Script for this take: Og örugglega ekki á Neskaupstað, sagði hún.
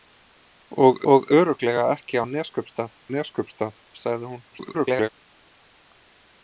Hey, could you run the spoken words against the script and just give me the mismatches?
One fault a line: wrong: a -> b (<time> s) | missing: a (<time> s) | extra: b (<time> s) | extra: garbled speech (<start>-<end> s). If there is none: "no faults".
extra: og (1.1 s)
extra: Neskaupstað (3.1 s)
extra: garbled speech (4.5-5.1 s)